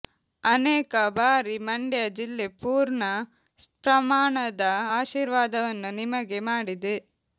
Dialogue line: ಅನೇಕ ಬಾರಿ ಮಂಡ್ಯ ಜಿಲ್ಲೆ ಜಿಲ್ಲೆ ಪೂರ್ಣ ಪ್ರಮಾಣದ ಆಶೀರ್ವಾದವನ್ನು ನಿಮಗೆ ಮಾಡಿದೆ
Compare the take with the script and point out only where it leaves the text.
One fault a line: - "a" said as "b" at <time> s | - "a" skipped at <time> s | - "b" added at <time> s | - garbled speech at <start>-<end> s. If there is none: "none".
- "ಜಿಲ್ಲೆ" skipped at 2.5 s